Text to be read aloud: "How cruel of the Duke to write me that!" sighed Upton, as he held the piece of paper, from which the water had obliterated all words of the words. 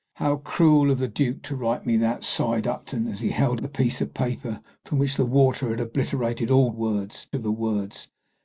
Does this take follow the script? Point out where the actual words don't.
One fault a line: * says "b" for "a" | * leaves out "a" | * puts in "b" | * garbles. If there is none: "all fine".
all fine